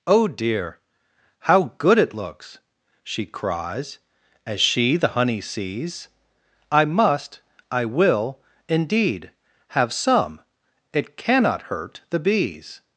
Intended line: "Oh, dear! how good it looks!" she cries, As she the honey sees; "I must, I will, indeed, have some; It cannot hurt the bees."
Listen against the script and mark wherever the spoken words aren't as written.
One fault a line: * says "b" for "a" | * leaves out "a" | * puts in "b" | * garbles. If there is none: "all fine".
all fine